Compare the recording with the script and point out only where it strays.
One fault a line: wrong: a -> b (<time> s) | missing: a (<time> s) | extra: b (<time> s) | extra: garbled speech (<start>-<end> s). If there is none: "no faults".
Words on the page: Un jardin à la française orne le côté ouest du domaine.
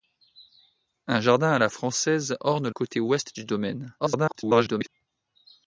missing: le (2.7 s)
extra: garbled speech (4.0-4.9 s)